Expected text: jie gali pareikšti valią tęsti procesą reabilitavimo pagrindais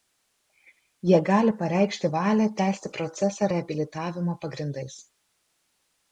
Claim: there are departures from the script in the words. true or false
false